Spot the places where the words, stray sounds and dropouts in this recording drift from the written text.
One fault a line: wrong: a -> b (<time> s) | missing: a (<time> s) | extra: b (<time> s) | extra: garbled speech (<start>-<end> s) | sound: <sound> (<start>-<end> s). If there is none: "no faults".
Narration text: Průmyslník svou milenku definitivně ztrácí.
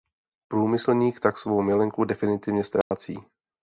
extra: tak (1.2 s)
sound: dropout (2.8-2.9 s)